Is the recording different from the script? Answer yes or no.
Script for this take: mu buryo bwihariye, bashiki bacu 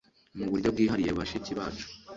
no